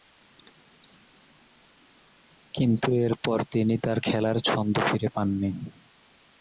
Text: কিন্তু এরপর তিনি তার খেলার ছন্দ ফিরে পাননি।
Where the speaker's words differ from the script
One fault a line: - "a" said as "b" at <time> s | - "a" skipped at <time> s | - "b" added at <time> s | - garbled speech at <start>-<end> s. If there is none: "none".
none